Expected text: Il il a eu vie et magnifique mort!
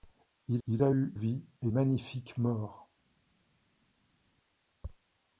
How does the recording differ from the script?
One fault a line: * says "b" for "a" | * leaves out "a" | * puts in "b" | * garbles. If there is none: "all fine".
all fine